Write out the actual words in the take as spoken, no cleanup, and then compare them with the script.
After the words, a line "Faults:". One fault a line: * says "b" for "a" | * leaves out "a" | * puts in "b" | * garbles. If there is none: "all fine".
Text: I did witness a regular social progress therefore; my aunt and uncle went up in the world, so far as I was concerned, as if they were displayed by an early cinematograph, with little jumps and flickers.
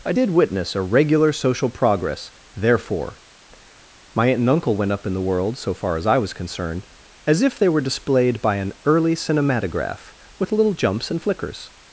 I did witness a regular social progress therefore; my aunt and uncle went up in the world, so far as I was concerned, as if they were displayed by an early cinematograph, with little jumps and flickers.
Faults:
all fine